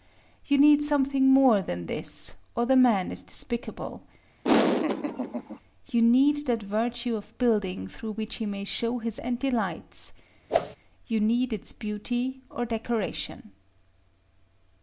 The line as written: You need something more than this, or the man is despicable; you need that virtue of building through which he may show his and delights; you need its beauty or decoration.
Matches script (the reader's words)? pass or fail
pass